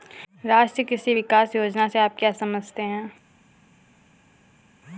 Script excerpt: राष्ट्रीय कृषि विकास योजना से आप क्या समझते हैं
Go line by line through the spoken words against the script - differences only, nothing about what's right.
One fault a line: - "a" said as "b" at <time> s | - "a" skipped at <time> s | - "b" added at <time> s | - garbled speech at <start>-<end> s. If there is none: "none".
none